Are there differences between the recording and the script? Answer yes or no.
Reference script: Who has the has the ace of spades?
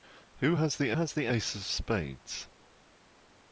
no